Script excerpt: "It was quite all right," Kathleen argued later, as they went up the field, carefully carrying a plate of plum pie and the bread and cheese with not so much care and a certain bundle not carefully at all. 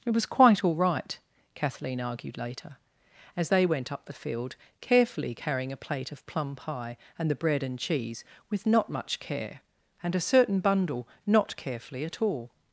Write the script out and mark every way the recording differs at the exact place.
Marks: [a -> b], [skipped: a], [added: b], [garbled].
"It was quite all right," Kathleen argued later, as they went up the field, carefully carrying a plate of plum pie and the bread and cheese with not [skipped: so] much care and a certain bundle not carefully at all.